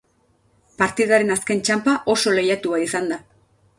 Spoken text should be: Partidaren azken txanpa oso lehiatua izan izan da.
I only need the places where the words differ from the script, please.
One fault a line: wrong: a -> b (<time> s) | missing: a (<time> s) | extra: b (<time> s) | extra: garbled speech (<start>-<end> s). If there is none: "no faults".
missing: izan (3.1 s)